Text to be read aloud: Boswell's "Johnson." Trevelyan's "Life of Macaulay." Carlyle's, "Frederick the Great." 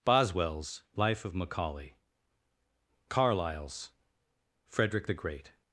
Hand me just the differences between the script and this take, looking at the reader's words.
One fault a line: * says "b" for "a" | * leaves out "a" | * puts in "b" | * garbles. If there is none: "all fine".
* leaves out "Johnson Trevelyan's"